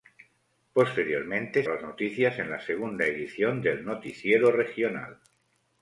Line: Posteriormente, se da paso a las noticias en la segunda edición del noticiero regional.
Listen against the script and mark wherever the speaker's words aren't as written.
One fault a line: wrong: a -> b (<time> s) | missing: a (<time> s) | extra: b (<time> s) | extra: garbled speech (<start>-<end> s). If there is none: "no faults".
missing: se da paso (1.6 s)